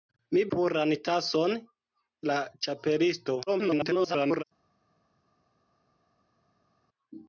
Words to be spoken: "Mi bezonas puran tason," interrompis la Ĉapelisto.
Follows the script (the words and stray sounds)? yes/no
no